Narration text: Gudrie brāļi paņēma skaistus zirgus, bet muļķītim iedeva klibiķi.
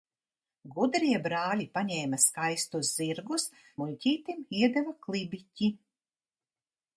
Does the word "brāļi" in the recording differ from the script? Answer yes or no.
no